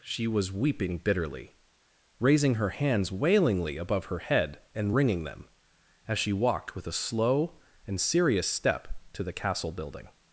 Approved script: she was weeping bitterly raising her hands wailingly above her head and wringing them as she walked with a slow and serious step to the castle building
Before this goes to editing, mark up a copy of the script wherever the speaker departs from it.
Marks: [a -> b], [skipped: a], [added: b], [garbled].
she was weeping bitterly raising her hands wailingly above her head and wringing them as she walked with a slow and serious step to the castle building